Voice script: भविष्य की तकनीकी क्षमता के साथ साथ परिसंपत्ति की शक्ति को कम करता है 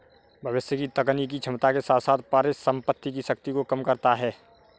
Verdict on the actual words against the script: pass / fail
pass